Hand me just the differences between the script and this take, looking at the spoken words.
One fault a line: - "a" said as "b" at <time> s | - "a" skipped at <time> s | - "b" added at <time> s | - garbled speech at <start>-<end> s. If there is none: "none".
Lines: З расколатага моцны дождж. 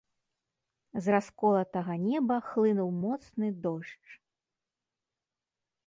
- "неба хлынуў" added at 2.1 s